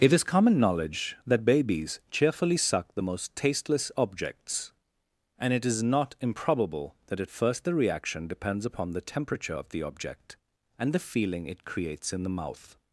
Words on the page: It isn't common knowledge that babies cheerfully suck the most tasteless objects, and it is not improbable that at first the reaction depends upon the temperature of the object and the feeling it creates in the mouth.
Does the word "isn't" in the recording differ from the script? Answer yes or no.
yes